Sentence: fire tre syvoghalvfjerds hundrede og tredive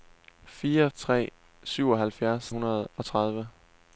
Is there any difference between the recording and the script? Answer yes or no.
no